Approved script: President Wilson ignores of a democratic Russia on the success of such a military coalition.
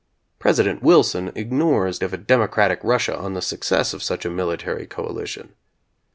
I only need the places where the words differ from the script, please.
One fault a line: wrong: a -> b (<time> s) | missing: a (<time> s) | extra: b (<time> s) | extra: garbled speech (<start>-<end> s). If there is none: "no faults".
no faults